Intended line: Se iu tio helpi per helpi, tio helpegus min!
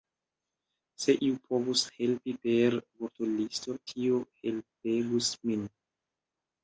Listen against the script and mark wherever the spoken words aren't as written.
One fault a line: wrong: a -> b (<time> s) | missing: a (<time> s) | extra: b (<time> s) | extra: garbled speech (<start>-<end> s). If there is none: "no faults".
wrong: tio -> povus (1.5 s)
wrong: helpi -> vortolisto (3.0 s)